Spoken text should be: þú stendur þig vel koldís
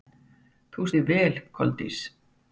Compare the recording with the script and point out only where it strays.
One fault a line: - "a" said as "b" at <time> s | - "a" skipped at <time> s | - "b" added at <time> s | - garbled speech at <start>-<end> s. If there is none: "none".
- "stendur" skipped at 0.9 s